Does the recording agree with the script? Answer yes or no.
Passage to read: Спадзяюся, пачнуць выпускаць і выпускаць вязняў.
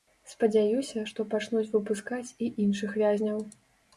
no